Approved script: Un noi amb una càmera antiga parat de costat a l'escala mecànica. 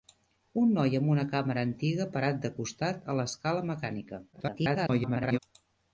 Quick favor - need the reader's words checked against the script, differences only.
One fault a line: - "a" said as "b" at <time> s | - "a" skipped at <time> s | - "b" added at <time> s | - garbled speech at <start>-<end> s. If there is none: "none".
- garbled speech at 4.3-5.4 s